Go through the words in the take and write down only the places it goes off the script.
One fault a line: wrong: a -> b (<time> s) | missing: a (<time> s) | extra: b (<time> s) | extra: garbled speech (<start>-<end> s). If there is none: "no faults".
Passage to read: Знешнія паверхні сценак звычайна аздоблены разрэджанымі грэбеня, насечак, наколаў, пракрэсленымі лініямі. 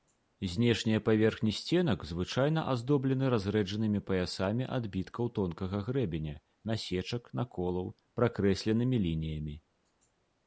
extra: паясамі адбіткаў тонкага (4.1 s)